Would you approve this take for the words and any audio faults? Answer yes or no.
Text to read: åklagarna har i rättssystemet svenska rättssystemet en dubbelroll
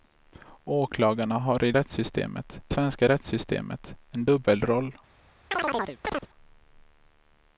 no